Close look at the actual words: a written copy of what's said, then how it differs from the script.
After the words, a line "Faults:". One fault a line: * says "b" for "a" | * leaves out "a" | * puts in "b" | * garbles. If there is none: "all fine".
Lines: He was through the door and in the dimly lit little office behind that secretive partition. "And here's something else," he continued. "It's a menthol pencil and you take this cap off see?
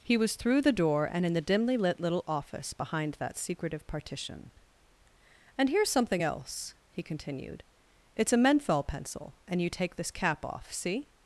He was through the door and in the dimly lit little office behind that secretive partition. "And here's something else," he continued. "It's a menthol pencil and you take this cap off see?
Faults:
all fine